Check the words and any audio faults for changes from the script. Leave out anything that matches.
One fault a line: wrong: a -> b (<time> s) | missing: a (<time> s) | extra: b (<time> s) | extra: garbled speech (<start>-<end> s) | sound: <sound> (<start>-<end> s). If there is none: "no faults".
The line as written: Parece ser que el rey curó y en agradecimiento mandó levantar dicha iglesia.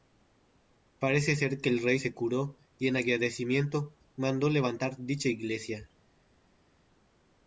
extra: se (2.0 s)